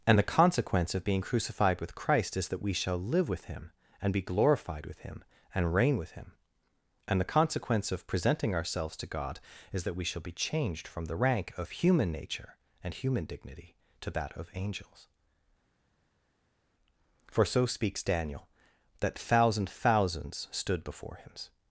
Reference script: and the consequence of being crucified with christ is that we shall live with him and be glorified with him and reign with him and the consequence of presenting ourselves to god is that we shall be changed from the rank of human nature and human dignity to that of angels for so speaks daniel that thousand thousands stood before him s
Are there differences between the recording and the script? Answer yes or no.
yes